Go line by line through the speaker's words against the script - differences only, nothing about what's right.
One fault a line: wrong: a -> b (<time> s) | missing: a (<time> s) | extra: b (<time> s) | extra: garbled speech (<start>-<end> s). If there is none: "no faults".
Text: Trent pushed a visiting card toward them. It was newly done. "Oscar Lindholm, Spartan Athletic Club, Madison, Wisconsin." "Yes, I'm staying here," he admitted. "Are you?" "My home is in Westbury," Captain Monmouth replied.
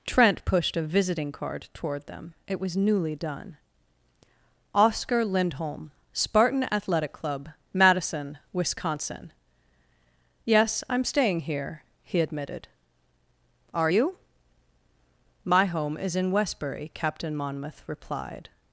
no faults